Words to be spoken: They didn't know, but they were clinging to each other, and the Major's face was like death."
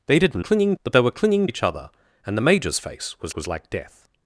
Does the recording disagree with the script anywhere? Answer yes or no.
yes